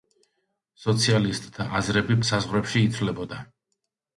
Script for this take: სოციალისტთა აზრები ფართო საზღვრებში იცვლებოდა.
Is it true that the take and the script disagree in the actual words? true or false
true